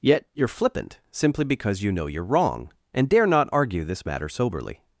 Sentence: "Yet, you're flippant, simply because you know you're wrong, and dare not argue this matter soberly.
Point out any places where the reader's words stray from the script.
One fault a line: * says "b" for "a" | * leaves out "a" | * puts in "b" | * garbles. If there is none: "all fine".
all fine